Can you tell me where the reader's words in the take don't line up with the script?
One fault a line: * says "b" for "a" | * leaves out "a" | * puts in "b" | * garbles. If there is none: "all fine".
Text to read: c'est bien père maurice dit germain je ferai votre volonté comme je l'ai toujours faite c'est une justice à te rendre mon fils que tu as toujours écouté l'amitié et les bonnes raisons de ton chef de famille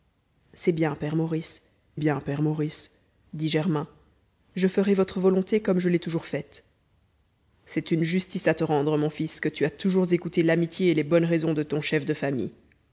* puts in "bien père maurice"